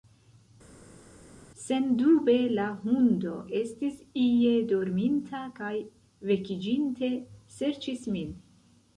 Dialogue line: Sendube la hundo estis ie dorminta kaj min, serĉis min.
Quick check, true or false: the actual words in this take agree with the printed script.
false